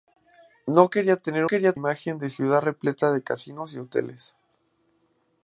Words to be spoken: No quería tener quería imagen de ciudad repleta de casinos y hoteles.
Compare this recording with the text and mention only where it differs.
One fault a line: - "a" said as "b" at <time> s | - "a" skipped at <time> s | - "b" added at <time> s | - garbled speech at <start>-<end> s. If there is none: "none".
none